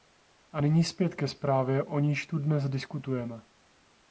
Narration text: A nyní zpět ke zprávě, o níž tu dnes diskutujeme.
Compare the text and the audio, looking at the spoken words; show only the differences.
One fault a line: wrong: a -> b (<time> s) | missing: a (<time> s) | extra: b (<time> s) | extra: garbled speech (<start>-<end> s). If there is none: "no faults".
no faults